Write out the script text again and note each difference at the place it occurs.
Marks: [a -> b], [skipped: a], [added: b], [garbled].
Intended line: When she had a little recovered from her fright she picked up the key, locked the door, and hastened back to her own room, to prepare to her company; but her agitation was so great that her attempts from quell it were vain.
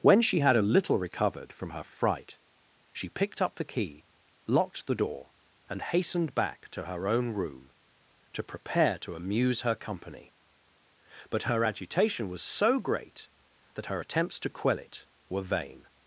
When she had a little recovered from her fright she picked up the key, locked the door, and hastened back to her own room, to prepare to [added: amuse] her company; but her agitation was so great that her attempts [from -> to] quell it were vain.